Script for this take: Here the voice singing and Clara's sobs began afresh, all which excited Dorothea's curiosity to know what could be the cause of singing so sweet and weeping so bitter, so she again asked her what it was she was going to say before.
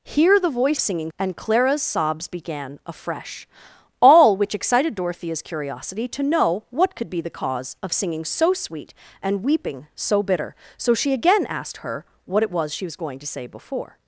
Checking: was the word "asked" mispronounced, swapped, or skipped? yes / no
no